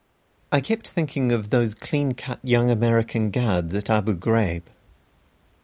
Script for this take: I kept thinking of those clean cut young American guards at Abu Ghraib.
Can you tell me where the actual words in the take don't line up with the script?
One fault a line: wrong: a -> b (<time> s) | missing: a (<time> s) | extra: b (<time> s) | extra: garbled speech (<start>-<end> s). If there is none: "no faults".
no faults